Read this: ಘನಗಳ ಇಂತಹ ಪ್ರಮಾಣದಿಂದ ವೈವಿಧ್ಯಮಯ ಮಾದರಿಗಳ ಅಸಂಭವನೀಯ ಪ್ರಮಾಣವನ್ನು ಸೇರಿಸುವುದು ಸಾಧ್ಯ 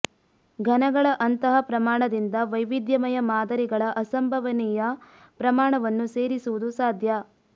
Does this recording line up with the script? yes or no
no